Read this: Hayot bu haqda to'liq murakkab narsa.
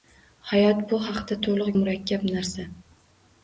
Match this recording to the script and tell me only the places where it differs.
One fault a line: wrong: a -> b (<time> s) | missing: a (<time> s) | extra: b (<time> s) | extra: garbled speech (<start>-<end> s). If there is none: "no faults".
no faults